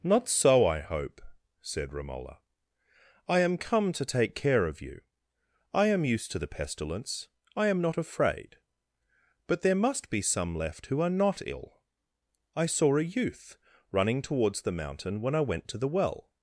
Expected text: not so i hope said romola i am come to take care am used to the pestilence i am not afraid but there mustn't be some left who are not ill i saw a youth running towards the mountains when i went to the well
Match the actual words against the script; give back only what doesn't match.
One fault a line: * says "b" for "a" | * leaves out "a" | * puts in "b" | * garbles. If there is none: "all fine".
* puts in "of you i"
* says "must" for "mustn't"
* says "mountain" for "mountains"